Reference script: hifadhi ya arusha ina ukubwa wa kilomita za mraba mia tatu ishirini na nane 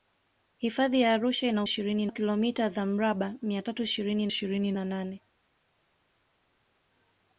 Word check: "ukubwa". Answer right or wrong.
wrong